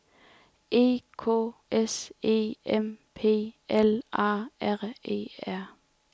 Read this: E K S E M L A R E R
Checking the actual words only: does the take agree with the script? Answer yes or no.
no